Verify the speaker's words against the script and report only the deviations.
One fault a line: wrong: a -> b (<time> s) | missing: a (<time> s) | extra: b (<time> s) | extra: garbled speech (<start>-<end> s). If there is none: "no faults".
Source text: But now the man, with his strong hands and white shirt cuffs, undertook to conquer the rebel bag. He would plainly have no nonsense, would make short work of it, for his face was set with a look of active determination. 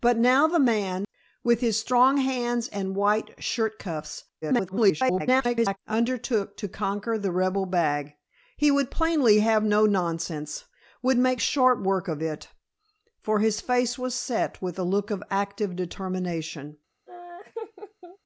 extra: garbled speech (4.4-5.8 s)